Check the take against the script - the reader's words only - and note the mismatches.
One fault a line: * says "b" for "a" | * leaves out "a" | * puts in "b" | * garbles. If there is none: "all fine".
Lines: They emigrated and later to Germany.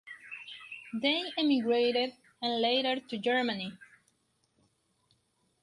all fine